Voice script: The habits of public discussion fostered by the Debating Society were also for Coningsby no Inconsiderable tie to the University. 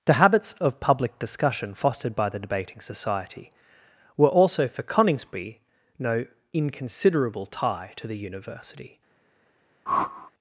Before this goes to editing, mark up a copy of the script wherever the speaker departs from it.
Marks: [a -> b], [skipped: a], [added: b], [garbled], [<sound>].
The habits of public discussion fostered by the Debating Society were also for Coningsby no Inconsiderable tie to the University. [whoosh]